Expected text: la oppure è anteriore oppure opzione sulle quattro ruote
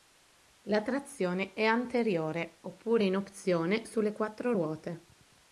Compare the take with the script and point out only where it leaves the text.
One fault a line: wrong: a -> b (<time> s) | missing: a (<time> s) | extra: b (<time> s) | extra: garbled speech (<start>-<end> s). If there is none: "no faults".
wrong: oppure -> trazione (0.8 s)
extra: in (3.0 s)